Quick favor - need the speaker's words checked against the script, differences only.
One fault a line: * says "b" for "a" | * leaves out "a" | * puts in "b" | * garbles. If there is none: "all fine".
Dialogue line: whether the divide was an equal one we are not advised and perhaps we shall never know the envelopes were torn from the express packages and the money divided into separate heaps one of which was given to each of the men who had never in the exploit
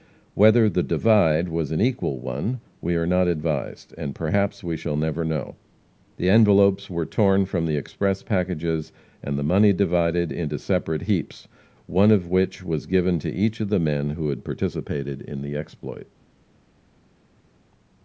* says "participated" for "never"